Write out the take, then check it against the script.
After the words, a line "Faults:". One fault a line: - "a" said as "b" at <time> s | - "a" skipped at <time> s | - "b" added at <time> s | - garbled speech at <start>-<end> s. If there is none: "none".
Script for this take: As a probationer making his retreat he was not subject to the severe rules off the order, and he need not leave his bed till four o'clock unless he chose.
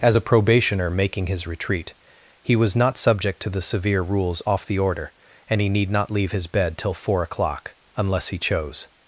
As a probationer making his retreat he was not subject to the severe rules off the order, and he need not leave his bed till four o'clock unless he chose.
Faults:
none